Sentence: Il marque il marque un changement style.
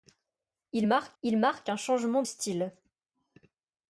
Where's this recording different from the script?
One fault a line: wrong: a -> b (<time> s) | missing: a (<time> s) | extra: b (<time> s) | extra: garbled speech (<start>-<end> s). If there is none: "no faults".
no faults